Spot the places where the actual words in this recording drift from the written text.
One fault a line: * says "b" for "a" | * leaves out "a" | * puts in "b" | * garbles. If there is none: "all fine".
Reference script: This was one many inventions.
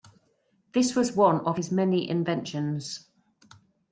* puts in "of his"